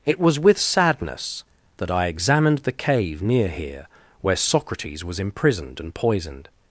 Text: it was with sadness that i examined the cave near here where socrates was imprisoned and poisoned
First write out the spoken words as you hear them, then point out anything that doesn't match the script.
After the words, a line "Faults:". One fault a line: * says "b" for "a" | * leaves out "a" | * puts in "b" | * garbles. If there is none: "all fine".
it was with sadness that i examined the cave near here where socrates was imprisoned and poisoned
Faults:
all fine